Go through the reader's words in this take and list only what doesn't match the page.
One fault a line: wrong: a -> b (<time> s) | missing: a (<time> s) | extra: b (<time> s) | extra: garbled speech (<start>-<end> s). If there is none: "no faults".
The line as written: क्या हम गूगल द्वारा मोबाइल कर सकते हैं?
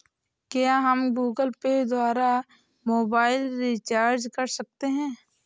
extra: पे (1.6 s)
extra: रिचार्ज (3.6 s)